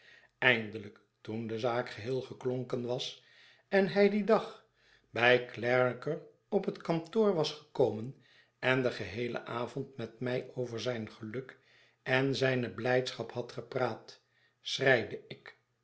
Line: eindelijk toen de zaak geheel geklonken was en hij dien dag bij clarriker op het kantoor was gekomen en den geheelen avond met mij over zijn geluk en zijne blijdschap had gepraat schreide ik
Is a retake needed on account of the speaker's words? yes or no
no